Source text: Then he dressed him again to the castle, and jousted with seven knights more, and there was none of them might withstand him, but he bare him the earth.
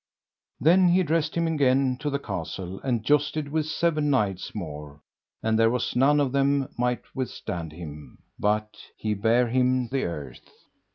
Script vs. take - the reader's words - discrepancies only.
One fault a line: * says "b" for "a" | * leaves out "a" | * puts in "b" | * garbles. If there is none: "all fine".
all fine